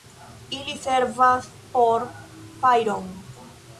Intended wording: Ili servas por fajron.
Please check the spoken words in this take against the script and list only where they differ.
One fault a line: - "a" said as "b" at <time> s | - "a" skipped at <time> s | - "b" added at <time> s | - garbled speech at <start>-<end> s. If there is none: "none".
none